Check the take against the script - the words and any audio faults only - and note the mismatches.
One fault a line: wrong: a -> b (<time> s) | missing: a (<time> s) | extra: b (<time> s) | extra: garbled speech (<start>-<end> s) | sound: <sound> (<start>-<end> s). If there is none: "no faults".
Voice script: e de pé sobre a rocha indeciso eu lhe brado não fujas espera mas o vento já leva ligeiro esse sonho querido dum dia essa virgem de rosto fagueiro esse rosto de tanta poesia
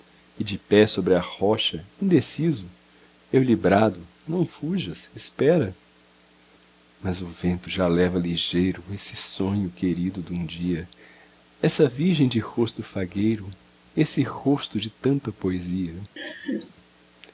sound: laugh (16.2-16.7 s)